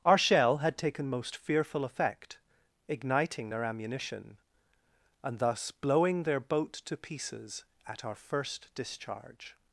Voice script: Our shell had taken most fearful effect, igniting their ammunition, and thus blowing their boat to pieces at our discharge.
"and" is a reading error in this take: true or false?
false